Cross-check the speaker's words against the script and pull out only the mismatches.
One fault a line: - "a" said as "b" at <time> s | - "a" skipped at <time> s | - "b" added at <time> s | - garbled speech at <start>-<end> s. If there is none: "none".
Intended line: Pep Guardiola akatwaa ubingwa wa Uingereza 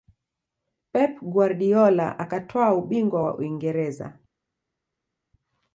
none